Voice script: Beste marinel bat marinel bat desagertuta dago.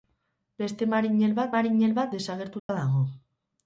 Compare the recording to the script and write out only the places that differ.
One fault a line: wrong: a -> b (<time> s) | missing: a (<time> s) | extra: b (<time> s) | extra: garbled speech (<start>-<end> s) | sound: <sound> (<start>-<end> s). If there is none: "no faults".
sound: dropout (2.6-2.7 s)